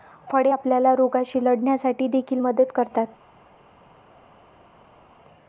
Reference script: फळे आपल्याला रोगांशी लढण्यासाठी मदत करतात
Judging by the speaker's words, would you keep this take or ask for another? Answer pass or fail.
fail